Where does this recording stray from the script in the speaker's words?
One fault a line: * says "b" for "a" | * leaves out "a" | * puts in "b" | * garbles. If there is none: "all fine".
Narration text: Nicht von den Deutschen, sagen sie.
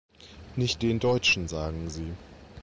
* leaves out "von"